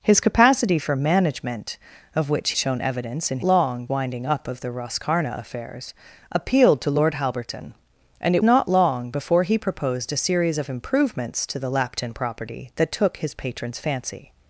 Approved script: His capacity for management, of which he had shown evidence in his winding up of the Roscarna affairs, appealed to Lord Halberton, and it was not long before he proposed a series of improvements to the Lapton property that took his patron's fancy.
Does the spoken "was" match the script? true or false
false